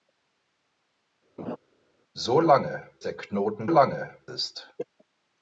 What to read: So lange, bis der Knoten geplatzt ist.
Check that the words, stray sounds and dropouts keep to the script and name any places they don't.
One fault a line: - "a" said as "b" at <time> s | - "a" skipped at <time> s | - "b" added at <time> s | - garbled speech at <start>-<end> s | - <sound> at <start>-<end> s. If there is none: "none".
- laugh at 1.4-1.6 s
- "bis" skipped at 2.9 s
- "geplatzt" said as "lange" at 3.7 s